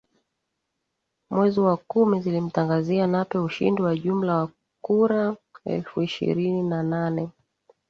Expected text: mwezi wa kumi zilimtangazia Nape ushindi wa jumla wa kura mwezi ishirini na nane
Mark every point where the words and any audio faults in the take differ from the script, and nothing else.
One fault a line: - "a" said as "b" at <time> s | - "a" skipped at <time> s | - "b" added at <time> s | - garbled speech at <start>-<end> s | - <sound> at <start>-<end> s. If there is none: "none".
- "mwezi" said as "elfu" at 5.7 s